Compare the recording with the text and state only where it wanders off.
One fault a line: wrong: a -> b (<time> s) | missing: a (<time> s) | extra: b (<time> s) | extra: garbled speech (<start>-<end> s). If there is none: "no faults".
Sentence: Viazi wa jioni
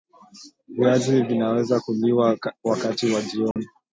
extra: vinaweza kuliwa wakati (1.2 s)